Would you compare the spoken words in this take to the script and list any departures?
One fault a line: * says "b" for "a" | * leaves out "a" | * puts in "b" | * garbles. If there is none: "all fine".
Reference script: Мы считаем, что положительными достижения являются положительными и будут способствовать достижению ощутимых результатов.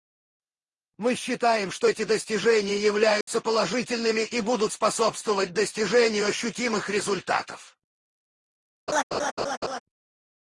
* says "эти" for "положительными"